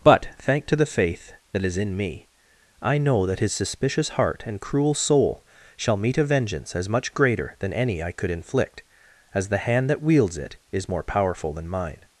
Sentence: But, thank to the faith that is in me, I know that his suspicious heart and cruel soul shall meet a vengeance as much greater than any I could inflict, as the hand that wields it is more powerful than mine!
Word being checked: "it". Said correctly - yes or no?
yes